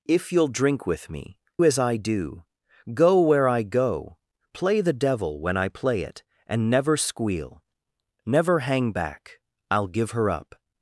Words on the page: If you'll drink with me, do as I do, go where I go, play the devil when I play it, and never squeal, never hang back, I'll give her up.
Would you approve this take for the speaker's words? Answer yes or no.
no